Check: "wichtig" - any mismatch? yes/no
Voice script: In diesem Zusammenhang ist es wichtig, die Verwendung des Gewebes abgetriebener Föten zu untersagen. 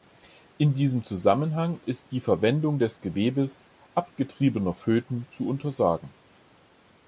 yes